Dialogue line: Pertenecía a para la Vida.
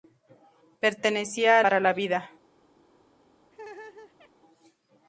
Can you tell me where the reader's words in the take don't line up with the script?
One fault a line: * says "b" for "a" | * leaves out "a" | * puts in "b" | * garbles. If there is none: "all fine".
all fine